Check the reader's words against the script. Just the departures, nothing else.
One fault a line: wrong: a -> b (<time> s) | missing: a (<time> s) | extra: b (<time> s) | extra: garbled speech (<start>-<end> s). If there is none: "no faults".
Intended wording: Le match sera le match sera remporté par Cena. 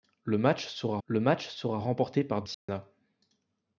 no faults